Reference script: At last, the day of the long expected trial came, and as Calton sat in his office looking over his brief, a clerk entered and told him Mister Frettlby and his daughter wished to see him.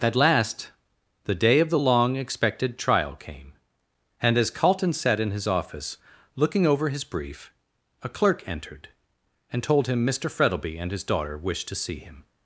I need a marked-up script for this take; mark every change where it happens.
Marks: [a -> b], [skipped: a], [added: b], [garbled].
At last, the day of the long expected trial came, and as Calton sat in his office looking over his brief, a clerk entered and told him Mister Frettlby and his daughter wished to see him.